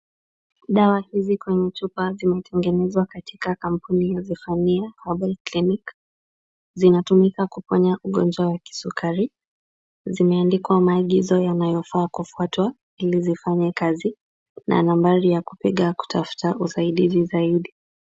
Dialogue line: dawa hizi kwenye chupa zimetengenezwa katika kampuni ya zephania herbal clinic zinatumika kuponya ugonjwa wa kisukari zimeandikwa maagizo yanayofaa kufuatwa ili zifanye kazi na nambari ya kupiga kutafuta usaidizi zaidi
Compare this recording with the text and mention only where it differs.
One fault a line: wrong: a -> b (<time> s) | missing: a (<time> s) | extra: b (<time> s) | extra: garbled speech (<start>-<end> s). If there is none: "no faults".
no faults